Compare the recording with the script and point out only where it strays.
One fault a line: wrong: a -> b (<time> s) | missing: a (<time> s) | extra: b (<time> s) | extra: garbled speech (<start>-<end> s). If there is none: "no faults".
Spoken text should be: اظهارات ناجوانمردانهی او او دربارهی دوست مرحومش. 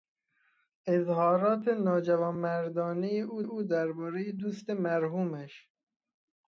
no faults